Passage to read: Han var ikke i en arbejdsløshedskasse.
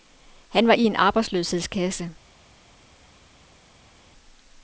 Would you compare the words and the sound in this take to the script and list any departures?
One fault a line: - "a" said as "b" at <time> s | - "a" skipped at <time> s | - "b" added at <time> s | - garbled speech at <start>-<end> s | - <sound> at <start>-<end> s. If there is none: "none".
- "ikke" skipped at 0.7 s